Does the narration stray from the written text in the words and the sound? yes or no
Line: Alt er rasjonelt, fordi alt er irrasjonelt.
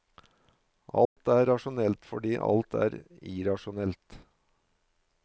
yes